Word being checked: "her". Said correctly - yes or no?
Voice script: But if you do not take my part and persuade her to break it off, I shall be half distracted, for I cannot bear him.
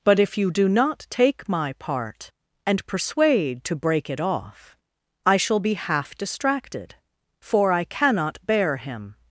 no